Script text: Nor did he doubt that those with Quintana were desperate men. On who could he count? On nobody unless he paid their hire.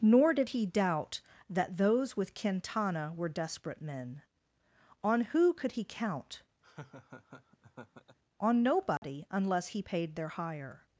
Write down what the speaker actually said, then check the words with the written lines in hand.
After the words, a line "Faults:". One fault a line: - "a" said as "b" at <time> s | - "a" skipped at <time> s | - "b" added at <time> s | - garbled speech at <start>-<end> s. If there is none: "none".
Nor did he doubt that those with Quintana were desperate men. On who could he count? On nobody unless he paid their hire.
Faults:
none